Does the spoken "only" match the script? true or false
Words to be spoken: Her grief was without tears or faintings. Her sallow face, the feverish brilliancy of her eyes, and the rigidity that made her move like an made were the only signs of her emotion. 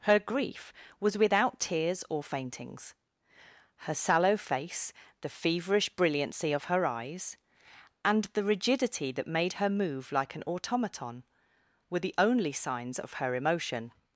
true